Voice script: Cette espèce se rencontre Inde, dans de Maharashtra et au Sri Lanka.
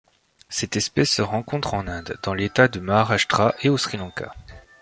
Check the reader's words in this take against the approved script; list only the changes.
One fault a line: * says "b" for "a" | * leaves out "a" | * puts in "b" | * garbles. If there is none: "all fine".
* puts in "en"
* puts in "l'État"